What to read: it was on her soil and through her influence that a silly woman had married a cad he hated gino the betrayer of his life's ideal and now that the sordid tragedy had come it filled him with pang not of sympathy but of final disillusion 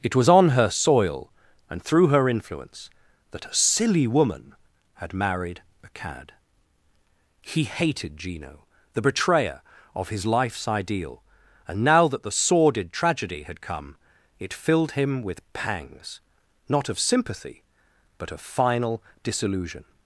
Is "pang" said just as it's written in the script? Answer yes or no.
no